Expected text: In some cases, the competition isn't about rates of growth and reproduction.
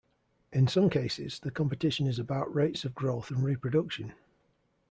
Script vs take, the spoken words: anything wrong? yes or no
yes